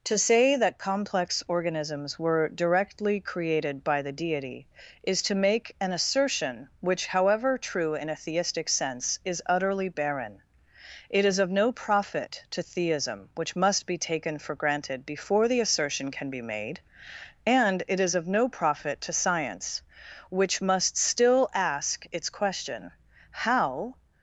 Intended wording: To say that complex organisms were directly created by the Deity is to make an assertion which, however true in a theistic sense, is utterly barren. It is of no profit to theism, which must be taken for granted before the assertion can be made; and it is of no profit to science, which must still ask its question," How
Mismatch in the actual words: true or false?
false